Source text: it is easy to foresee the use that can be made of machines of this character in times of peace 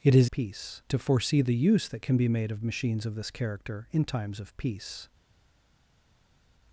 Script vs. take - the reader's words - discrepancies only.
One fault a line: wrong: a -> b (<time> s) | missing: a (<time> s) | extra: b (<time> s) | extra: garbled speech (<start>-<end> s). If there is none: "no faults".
wrong: easy -> peace (0.3 s)